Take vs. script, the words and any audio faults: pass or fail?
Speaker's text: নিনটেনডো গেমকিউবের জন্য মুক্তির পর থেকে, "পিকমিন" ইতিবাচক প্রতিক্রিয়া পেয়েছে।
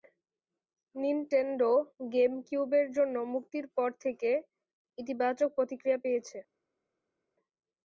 fail